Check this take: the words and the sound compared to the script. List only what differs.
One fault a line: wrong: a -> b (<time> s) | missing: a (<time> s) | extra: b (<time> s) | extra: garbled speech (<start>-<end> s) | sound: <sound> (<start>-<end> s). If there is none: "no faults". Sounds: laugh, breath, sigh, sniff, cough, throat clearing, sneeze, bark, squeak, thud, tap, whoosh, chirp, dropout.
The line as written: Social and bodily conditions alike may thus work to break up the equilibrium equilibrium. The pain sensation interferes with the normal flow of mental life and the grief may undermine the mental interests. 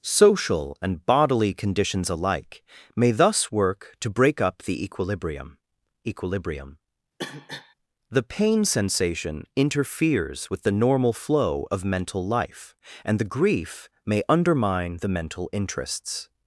sound: cough (7.2-7.7 s)